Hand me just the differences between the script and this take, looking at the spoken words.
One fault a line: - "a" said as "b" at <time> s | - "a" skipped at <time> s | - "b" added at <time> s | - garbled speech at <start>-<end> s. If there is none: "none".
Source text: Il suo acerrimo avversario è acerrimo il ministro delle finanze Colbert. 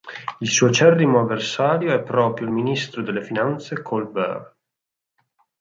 - "acerrimo" said as "proprio" at 2.0 s